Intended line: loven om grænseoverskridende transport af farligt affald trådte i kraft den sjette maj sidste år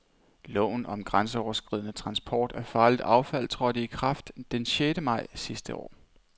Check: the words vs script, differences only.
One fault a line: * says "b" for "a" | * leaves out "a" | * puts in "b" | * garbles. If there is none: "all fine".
all fine